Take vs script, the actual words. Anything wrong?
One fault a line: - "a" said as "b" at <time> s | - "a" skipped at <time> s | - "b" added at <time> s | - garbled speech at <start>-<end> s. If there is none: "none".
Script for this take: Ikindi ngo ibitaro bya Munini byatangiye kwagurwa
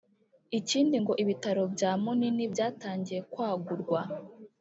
none